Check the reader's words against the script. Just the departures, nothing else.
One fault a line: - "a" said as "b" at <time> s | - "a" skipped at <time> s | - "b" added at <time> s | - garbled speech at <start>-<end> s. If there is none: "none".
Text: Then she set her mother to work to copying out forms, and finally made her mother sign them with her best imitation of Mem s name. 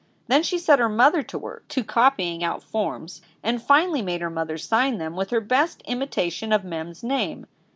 none